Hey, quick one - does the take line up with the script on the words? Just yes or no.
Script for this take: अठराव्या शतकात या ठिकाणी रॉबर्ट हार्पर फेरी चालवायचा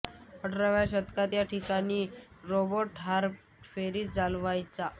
yes